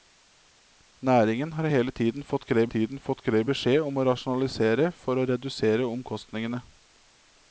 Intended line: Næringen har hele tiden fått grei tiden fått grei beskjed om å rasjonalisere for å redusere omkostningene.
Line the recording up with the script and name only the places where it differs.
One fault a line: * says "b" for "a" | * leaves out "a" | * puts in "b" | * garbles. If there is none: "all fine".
all fine